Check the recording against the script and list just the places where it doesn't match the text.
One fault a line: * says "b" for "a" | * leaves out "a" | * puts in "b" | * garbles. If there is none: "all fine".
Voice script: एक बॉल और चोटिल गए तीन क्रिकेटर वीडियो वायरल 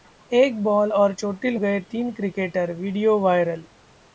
all fine